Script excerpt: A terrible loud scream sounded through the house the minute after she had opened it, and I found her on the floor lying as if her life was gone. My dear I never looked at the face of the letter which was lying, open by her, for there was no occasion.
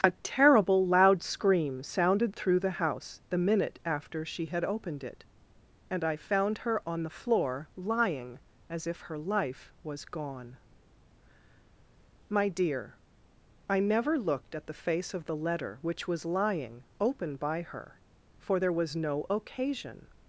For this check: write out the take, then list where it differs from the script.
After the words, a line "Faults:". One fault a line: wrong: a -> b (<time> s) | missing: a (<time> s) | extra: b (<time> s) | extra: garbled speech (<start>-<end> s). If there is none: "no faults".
A terrible loud scream sounded through the house the minute after she had opened it, and I found her on the floor lying as if her life was gone. My dear I never looked at the face of the letter which was lying, open by her, for there was no occasion.
Faults:
no faults